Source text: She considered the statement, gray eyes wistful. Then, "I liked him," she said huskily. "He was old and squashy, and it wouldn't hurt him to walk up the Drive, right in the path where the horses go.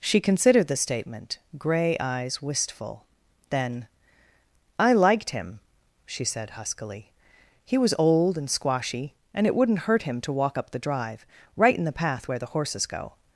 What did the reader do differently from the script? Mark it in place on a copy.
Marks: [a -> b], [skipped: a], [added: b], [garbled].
She considered the statement, gray eyes wistful. Then, "I liked him," she said huskily. "He was old and squashy, and it wouldn't hurt him to walk up the Drive, right in the path where the horses go.